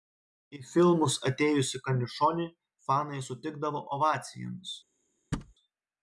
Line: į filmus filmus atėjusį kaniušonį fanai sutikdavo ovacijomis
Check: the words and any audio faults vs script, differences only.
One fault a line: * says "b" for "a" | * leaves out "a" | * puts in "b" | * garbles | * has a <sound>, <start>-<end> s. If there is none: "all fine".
* leaves out "filmus"
* has a thud, 5.3-5.5 s